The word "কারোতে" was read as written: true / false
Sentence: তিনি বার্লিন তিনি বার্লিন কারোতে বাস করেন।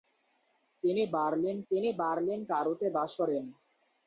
true